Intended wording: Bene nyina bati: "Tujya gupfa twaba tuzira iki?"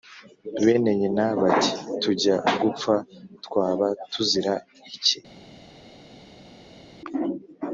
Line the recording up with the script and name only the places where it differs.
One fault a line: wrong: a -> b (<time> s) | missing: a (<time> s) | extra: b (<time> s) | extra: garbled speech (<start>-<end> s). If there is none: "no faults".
no faults